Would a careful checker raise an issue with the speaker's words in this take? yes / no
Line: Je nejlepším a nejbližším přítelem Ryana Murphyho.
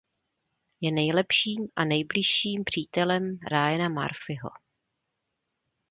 no